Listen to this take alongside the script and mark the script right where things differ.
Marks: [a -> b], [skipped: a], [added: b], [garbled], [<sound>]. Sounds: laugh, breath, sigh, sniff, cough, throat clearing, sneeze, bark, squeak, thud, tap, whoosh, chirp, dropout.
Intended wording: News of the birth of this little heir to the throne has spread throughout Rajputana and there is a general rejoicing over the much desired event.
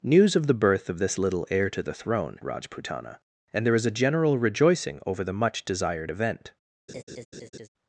News of the birth of this little heir to the throne [skipped: has spread throughout] Rajputana and there is a general rejoicing over the much desired event. [laugh]